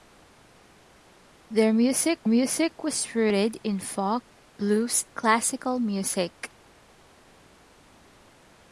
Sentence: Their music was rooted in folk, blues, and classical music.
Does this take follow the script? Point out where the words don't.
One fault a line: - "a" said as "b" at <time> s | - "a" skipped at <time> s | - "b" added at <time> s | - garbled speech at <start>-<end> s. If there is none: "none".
- "music" added at 2.3 s
- "and" skipped at 5.0 s